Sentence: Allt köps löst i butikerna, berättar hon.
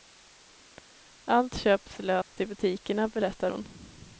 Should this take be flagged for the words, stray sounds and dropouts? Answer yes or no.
yes